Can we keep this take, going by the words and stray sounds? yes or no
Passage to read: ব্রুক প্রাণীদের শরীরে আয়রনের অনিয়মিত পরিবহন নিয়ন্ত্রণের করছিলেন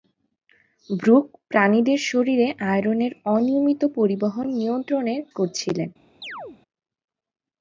no